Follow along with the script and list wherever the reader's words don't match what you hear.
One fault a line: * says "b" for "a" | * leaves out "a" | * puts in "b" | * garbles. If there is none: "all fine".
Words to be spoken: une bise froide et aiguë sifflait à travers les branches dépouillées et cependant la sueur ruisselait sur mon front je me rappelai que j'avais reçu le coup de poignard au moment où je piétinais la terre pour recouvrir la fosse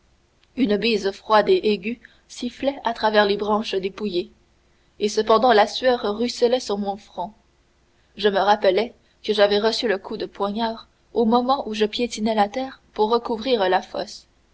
all fine